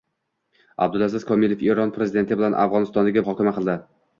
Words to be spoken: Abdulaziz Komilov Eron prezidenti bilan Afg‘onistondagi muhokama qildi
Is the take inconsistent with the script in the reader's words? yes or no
no